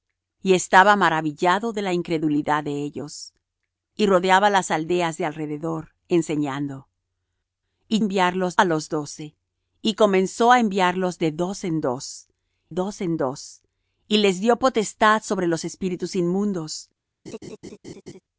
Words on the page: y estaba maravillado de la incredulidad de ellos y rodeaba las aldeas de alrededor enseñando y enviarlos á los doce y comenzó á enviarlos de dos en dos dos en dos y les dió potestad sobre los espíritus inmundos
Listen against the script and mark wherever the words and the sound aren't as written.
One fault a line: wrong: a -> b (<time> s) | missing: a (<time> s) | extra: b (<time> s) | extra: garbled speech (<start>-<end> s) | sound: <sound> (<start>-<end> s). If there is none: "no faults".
sound: laugh (17.3-18.2 s)